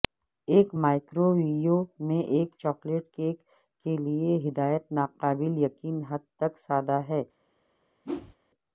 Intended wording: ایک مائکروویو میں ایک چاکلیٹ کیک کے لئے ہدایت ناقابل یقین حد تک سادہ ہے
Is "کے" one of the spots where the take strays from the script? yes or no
no